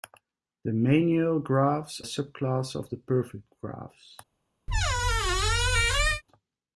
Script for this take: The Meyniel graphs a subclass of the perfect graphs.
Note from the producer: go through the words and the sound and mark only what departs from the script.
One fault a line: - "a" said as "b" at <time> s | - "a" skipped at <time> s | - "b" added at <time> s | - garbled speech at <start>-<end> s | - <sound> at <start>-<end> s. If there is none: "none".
- squeak at 4.7-6.2 s